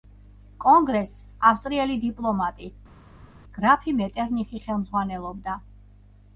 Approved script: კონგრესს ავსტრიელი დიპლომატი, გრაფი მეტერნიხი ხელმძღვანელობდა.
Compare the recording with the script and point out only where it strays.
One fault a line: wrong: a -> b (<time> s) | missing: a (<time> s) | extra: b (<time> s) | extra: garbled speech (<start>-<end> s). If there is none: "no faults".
no faults